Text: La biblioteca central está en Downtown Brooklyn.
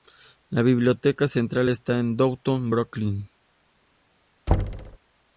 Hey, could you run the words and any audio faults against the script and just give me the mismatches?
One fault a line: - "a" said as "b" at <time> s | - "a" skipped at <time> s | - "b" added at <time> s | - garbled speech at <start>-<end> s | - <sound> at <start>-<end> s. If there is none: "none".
- thud at 4.5-5.0 s